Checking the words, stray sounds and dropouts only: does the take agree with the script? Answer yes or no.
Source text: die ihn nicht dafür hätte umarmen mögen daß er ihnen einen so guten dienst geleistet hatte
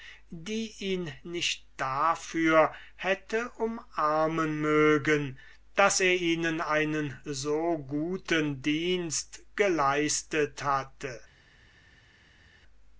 yes